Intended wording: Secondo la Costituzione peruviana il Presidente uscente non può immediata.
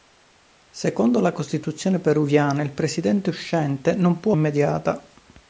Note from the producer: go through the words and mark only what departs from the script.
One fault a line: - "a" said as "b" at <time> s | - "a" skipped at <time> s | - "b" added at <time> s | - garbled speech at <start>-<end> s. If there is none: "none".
none